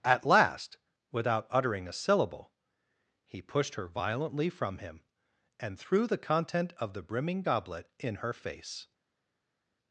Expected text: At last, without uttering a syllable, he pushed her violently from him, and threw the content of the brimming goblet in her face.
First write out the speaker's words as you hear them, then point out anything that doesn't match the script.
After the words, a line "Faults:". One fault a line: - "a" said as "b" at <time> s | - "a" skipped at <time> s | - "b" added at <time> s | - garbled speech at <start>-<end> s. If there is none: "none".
At last, without uttering a syllable, he pushed her violently from him, and threw the content of the brimming goblet in her face.
Faults:
none